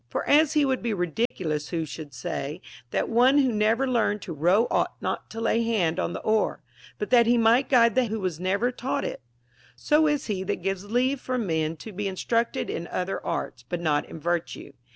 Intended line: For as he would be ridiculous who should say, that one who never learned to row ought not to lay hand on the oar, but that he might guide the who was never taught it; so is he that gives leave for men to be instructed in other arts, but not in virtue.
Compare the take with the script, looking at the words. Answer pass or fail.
pass